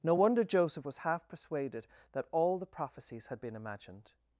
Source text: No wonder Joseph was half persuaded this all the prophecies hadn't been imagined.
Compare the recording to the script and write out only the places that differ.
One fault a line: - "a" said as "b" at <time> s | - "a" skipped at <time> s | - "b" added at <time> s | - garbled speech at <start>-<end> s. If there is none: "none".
- "this" said as "that" at 2.1 s
- "hadn't" said as "had" at 3.3 s